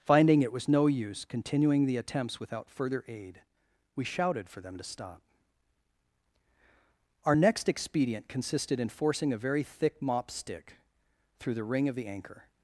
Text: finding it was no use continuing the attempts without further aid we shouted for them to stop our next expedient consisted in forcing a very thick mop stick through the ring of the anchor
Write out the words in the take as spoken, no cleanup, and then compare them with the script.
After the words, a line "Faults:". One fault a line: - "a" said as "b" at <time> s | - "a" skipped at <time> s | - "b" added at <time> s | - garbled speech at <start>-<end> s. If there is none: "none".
finding it was no use continuing the attempts without further aid we shouted for them to stop our next expedient consisted in forcing a very thick mop stick through the ring of the anchor
Faults:
none